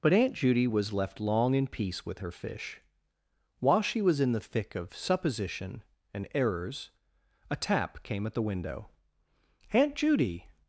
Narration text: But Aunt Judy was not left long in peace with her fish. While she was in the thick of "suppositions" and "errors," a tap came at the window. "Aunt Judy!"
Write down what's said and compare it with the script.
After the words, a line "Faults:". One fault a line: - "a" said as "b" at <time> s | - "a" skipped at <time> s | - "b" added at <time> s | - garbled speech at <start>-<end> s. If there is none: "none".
But Aunt Judy was left long in peace with her fish. While she was in the thick of "supposition" and "errors," a tap came at the window. "Aunt Judy!"
Faults:
- "not" skipped at 0.9 s
- "suppositions" said as "supposition" at 4.9 s